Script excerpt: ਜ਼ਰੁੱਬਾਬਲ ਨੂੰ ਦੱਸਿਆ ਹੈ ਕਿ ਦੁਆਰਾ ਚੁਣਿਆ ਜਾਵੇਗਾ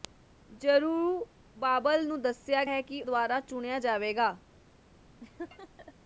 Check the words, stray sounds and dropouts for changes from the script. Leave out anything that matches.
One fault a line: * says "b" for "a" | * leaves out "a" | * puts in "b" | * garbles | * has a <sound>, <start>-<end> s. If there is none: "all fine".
* has a laugh, 5.2-5.9 s